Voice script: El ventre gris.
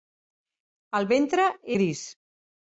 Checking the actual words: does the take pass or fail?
pass